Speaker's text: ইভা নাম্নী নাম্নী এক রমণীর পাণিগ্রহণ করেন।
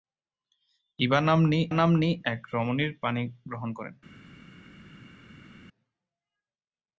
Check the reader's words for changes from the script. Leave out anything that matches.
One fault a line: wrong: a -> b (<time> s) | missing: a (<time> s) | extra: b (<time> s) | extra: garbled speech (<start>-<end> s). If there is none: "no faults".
no faults